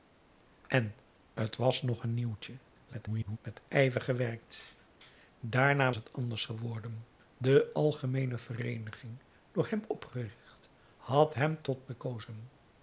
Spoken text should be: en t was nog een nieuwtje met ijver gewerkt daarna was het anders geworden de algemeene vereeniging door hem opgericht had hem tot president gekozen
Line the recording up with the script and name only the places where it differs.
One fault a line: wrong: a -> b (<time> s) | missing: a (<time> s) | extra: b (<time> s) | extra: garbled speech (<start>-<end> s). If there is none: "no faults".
extra: garbled speech (2.9-3.4 s)
missing: was (5.9 s)
missing: president (11.9 s)